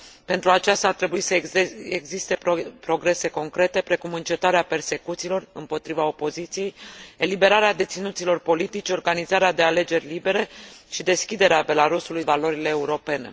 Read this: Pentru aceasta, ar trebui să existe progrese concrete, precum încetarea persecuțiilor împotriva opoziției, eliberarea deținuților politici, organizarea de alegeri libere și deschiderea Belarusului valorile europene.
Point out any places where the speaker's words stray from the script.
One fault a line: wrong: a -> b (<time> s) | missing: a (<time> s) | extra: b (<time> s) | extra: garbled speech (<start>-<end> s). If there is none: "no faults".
no faults